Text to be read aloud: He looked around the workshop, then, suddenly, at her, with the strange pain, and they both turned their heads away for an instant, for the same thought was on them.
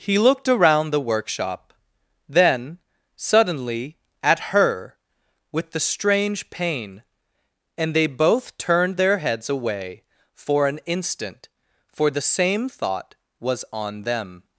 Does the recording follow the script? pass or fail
pass